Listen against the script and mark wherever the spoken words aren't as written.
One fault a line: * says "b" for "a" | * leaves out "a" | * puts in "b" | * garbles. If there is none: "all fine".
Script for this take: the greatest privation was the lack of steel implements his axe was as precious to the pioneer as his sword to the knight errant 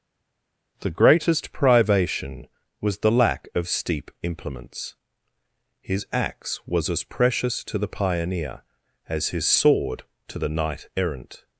* says "steep" for "steel"